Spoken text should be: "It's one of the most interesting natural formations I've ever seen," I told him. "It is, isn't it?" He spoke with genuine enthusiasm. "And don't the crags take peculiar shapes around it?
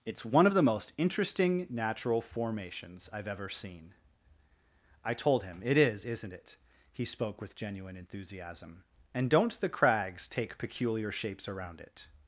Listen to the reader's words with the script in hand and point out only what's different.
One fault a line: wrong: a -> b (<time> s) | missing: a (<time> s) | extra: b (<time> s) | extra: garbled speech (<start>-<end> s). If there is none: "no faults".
no faults